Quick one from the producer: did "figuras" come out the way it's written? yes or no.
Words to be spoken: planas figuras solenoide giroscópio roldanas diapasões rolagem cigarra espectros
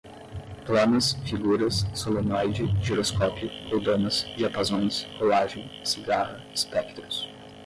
yes